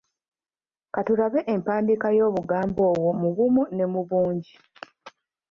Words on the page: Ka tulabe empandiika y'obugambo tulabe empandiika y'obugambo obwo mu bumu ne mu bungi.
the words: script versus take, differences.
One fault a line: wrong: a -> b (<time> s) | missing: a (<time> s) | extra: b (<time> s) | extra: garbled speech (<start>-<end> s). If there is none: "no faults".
missing: tulabe empandiika y'obugambo (2.8 s)